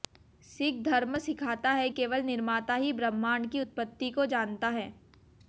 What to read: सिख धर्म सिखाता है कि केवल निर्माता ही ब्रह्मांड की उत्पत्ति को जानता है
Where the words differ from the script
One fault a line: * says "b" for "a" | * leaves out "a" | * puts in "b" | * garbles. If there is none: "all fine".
* leaves out "कि"